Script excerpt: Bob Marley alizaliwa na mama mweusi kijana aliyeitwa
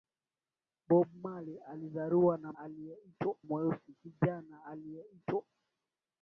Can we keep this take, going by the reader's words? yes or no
no